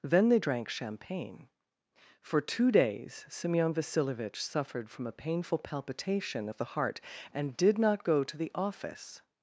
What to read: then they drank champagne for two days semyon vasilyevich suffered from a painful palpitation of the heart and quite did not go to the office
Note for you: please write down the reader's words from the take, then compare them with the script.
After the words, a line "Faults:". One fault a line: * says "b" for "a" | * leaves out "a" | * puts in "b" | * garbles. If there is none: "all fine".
then they drank champagne for two days semyon vasilyevich suffered from a painful palpitation of the heart and did not go to the office
Faults:
* leaves out "quite"